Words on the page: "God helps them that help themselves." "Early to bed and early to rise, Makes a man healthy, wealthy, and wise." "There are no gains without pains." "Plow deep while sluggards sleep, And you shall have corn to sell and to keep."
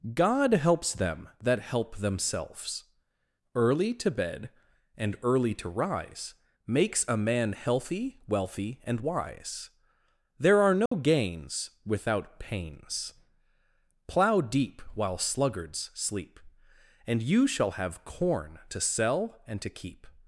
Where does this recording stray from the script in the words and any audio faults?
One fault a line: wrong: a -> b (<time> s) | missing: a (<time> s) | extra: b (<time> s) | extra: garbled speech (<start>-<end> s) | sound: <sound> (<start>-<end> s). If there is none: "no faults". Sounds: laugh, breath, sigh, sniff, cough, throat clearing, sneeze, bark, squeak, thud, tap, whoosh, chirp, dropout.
sound: dropout (10.9-10.9 s)